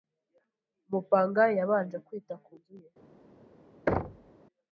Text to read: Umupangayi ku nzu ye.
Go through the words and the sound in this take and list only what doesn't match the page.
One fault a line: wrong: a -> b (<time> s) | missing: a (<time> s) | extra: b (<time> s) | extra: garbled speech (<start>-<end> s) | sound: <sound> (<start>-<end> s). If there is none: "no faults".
extra: yabanje kwita (1.6 s)
sound: thud (3.9-4.3 s)